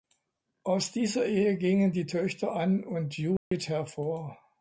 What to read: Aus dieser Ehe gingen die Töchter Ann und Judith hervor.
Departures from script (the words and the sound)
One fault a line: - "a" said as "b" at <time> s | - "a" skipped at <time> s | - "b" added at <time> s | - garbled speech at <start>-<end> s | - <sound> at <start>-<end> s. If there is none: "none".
- dropout at 3.4-3.5 s